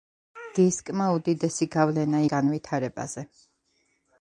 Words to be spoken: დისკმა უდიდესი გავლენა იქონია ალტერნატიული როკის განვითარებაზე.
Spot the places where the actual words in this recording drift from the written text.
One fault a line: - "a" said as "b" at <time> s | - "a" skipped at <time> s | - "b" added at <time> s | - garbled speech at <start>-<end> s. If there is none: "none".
- "იქონია ალტერნატიული როკის" skipped at 2.2 s